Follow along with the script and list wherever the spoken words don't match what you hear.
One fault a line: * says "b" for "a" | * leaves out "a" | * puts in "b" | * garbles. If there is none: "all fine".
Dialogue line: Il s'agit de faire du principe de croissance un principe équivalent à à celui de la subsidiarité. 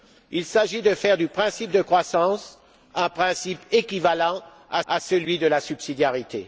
all fine